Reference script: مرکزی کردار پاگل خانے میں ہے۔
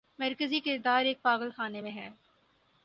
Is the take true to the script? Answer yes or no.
no